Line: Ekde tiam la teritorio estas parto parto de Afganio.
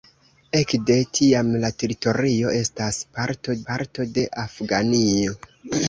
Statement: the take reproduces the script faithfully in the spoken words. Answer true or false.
true